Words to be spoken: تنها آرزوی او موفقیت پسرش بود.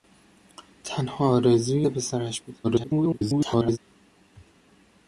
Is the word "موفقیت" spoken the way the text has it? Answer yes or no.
no